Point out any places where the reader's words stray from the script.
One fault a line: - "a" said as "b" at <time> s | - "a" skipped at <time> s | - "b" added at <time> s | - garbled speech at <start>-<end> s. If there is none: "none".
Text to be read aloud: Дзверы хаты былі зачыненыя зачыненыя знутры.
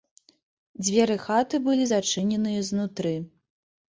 - "зачыненыя" skipped at 2.6 s